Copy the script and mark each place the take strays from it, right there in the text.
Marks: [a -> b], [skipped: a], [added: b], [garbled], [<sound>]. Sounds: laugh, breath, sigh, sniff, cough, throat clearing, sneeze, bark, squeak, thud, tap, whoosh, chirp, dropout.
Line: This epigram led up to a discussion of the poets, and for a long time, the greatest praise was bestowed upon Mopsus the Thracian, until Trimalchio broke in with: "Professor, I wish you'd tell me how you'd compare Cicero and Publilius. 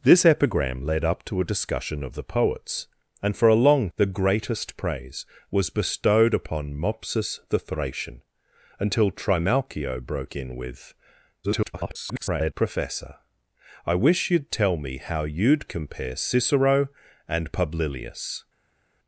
This epigram led up to a discussion of the poets, and for a long [skipped: time,] the greatest praise was bestowed upon Mopsus the Thracian, until Trimalchio broke in with: [garbled] "Professor, I wish you'd tell me how you'd compare Cicero and Publilius.